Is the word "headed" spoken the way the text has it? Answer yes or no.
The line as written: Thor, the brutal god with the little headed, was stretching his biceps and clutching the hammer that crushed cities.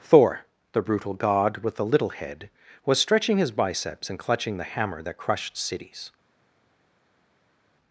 no